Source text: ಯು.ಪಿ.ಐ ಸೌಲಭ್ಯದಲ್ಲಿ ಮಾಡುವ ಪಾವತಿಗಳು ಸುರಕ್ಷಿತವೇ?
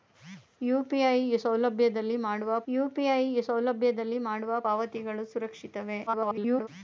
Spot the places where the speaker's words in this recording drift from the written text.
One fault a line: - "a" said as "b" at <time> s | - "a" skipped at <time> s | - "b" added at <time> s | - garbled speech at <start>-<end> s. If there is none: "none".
- "ಯು.ಪಿ.ಐ ಸೌಲಭ್ಯದಲ್ಲಿ ಮಾಡುವ" added at 2.7 s
- garbled speech at 6.1-6.7 s